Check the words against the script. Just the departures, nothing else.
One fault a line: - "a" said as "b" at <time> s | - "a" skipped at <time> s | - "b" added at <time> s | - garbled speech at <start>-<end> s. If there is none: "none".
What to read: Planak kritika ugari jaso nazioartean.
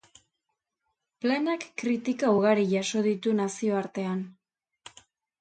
- "ditu" added at 3.1 s